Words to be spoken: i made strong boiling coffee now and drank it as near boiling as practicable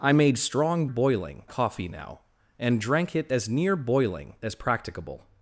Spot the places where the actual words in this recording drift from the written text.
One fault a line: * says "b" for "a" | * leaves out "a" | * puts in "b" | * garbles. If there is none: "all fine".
all fine